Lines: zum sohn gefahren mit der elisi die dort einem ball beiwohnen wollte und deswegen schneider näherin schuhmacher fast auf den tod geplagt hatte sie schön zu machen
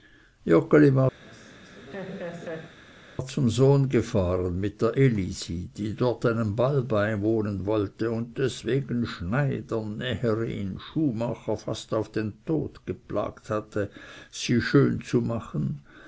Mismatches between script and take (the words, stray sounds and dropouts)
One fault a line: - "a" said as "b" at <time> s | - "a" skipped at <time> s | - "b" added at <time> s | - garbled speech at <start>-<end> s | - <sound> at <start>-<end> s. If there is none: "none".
- laugh at 1.2-2.8 s